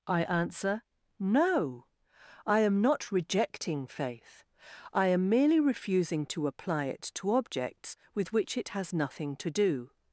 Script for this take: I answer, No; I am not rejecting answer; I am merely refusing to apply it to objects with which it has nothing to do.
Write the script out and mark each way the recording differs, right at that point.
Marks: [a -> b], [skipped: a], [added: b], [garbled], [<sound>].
I answer, No; I am not rejecting [answer; -> faith] I am merely refusing to apply it to objects with which it has nothing to do.